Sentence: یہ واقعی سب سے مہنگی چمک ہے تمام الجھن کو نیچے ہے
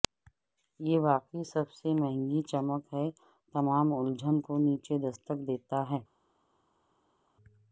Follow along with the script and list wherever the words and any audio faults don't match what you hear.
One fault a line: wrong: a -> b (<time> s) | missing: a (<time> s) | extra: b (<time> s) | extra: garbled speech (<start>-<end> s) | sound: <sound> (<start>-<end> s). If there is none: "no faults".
extra: دستک دیتا (5.0 s)